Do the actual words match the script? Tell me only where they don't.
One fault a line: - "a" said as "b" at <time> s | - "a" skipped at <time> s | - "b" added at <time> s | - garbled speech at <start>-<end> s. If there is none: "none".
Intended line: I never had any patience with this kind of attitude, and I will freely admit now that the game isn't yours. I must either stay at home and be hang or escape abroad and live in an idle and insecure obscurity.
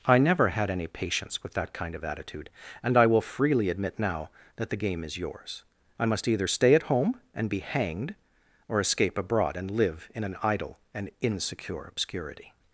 - "this" said as "that" at 1.5 s
- "isn't" said as "is" at 5.0 s
- "hang" said as "hanged" at 7.6 s